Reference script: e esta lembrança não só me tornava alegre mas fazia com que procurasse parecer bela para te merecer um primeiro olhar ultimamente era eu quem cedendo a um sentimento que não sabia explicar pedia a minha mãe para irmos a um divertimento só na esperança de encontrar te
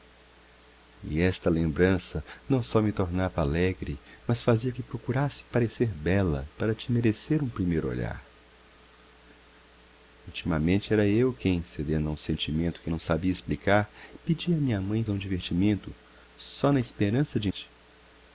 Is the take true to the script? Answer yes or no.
no